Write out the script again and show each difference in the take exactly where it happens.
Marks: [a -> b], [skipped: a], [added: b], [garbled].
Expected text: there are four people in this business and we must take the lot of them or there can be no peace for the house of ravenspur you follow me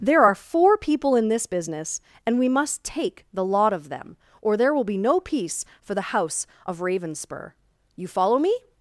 there are four people in this business and we must take the lot of them or there [can -> will] be no peace for the house of ravenspur you follow me